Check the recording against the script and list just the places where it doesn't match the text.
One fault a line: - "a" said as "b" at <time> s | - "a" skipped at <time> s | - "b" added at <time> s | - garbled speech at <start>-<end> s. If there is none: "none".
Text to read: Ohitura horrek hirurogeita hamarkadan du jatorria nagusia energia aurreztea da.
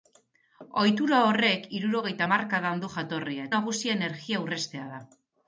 none